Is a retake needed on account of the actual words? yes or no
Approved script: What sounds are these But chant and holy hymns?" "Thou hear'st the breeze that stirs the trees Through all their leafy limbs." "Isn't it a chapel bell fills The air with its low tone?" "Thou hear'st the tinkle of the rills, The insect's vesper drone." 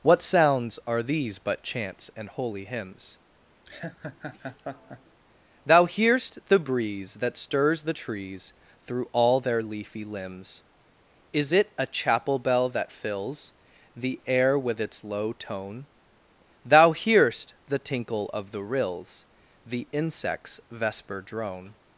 yes